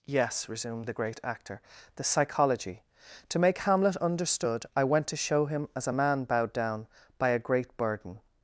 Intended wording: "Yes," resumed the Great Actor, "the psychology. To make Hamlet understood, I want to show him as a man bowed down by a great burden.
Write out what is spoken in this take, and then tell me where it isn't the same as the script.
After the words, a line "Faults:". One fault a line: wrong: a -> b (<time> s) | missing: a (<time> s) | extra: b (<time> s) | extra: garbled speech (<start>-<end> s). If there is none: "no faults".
"Yes," resumed the Great Actor, "the psychology. To make Hamlet understood, I went to show him as a man bowed down by a great burden.
Faults:
wrong: want -> went (4.8 s)